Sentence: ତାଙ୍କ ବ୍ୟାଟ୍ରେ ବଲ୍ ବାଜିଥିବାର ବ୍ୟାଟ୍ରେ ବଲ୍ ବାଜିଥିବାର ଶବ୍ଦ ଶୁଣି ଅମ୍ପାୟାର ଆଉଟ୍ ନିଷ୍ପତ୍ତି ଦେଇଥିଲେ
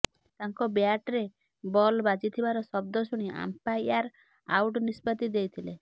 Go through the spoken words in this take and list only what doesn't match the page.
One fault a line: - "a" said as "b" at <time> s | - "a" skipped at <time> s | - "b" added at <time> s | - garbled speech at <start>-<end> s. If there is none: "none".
- "ବ୍ୟାଟ୍ରେ ବଲ୍ ବାଜିଥିବାର" skipped at 2.6 s